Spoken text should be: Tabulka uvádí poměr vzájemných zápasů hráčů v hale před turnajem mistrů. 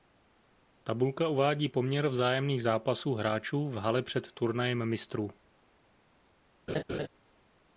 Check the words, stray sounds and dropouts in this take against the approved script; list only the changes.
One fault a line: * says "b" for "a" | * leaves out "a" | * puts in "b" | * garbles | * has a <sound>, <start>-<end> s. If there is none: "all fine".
* has a laugh, 6.7-7.1 s